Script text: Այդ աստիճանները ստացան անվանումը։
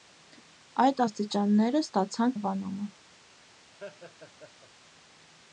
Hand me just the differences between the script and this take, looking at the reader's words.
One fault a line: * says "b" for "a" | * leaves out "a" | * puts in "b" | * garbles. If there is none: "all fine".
all fine